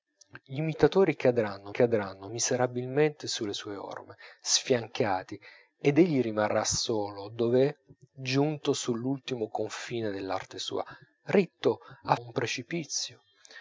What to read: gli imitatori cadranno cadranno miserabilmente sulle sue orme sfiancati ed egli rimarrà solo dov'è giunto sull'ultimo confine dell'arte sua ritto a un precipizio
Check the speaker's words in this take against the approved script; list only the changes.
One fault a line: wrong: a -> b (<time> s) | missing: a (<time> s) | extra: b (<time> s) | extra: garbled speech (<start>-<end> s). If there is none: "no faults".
no faults